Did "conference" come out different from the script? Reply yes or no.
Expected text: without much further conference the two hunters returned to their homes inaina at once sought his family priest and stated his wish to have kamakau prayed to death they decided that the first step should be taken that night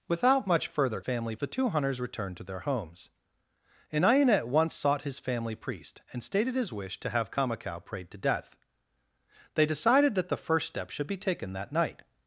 yes